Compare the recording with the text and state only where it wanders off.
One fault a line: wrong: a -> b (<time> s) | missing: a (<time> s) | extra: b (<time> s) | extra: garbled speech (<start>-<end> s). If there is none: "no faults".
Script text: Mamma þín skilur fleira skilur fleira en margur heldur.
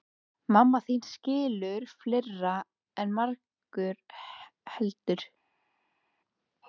missing: skilur fleira (2.5 s)